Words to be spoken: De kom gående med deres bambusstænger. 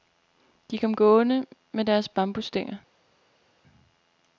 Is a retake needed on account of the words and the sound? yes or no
no